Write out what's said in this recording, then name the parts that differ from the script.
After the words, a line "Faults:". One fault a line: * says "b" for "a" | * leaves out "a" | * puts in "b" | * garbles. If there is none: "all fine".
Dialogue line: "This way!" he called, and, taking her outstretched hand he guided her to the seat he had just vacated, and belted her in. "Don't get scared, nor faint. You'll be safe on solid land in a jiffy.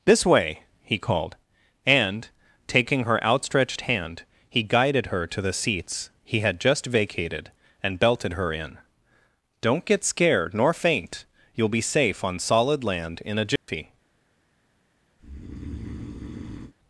"This way!" he called, and, taking her outstretched hand he guided her to the seats he had just vacated, and belted her in. "Don't get scared, nor faint. You'll be safe on solid land in a jiffy.
Faults:
* says "seats" for "seat"